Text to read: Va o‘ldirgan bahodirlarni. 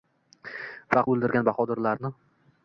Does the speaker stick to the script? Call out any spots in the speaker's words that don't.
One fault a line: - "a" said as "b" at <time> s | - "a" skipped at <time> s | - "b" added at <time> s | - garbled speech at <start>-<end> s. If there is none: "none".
none